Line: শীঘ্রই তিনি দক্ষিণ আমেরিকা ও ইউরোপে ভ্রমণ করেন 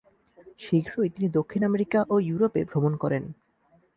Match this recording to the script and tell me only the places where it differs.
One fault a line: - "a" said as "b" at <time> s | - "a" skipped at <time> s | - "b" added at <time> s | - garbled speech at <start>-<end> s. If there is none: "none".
none